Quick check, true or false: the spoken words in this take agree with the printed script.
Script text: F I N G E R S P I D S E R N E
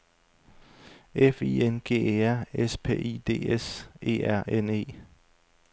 true